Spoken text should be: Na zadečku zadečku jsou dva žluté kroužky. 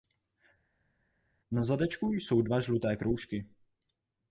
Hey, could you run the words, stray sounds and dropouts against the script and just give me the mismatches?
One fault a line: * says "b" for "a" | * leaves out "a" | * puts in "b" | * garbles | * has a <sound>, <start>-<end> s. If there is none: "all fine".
* leaves out "zadečku"